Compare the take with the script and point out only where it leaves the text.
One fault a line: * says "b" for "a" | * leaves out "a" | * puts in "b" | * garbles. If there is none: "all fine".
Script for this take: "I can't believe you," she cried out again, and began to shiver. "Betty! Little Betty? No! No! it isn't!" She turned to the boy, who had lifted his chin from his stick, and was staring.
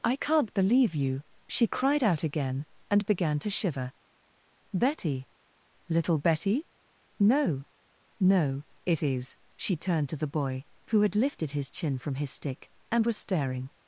* says "is" for "isn't"